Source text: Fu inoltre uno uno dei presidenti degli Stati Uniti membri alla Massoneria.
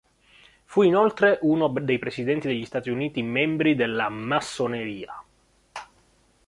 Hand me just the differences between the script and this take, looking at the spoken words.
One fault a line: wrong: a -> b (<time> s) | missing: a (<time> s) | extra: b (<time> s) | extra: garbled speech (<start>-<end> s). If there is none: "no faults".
missing: uno (1.7 s)
wrong: alla -> della (3.7 s)